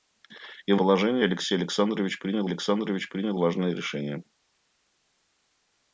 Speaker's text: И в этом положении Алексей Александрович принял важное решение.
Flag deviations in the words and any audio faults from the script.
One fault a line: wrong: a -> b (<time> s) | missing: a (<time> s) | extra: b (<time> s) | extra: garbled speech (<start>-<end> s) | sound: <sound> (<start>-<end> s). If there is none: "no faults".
missing: этом (0.8 s)
extra: Александрович принял (2.4 s)